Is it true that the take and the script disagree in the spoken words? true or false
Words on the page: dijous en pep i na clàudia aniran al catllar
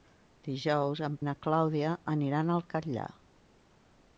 true